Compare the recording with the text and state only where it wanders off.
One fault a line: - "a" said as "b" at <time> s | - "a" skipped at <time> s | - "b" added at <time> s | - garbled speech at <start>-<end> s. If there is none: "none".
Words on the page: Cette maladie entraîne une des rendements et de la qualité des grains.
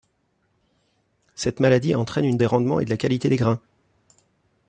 none